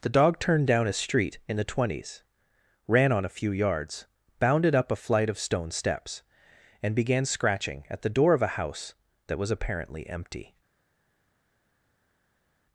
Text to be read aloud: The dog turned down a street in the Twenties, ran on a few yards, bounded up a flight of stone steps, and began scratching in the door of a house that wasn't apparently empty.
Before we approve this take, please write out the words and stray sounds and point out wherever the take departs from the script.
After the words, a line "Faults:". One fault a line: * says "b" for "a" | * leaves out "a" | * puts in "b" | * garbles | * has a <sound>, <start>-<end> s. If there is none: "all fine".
The dog turned down a street in the Twenties, ran on a few yards, bounded up a flight of stone steps, and began scratching at the door of a house that was apparently empty.
Faults:
* says "at" for "in"
* says "was" for "wasn't"